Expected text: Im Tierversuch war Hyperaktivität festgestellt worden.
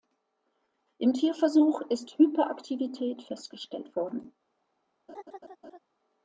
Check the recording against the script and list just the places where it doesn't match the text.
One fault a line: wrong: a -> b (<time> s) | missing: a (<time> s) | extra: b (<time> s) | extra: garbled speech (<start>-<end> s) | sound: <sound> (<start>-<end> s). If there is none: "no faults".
wrong: war -> ist (1.9 s)
sound: laugh (5.1-5.8 s)